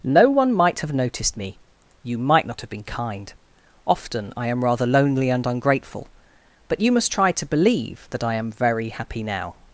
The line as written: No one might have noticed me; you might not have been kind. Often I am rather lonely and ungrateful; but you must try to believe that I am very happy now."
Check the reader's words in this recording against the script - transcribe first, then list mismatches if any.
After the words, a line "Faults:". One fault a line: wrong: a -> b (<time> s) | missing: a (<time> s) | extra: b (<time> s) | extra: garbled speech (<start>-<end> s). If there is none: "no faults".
No one might have noticed me; you might not have been kind. Often I am rather lonely and ungrateful; but you must try to believe that I am very happy now."
Faults:
no faults